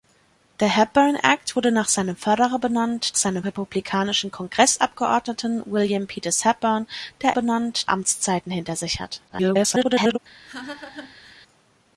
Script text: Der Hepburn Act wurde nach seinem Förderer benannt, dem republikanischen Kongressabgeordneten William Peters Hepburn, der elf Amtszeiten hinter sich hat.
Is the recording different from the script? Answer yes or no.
yes